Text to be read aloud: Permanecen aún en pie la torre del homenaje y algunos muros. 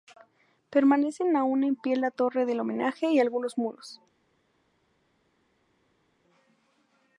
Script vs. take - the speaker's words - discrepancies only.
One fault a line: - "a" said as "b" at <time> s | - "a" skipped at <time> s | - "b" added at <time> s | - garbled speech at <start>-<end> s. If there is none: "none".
none